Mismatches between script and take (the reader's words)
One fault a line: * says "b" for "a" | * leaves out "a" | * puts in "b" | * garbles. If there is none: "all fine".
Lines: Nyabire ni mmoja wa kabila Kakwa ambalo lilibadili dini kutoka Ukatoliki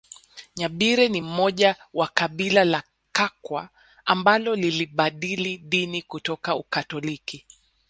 * puts in "la"